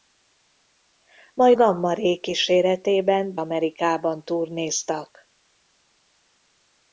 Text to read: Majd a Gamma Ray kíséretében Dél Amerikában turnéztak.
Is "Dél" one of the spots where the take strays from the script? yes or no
yes